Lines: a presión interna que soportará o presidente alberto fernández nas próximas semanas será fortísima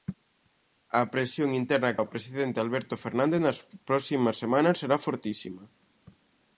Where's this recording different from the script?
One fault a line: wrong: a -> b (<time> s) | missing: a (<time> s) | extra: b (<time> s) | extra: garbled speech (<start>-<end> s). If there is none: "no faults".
missing: que soportará (2.0 s)